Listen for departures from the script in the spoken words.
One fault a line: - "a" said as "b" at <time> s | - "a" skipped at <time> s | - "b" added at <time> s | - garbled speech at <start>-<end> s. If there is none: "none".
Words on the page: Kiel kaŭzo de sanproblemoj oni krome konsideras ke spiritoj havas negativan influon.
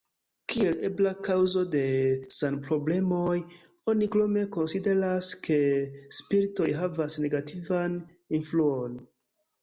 - "ebla" added at 0.9 s